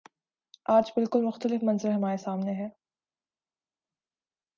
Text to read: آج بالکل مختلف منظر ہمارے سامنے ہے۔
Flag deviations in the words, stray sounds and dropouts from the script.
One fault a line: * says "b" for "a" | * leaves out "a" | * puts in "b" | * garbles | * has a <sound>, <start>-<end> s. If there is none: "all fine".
all fine